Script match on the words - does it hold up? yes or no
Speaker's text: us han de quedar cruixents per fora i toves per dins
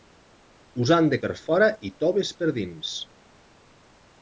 no